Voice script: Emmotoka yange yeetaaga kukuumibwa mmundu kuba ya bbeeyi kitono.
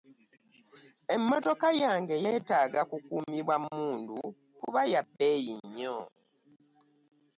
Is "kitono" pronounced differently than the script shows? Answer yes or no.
yes